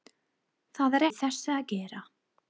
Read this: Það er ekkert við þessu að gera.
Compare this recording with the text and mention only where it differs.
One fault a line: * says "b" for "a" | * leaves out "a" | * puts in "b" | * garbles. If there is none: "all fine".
* leaves out "ekkert"